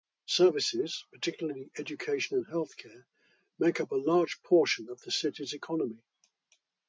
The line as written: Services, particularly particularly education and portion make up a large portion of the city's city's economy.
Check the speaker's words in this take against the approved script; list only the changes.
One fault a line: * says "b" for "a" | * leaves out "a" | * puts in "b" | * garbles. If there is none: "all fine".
* leaves out "particularly"
* says "healthcare" for "portion"
* leaves out "city's"